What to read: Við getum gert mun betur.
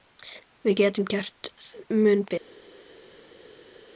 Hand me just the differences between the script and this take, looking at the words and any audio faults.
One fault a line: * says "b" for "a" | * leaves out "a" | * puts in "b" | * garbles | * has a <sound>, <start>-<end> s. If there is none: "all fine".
all fine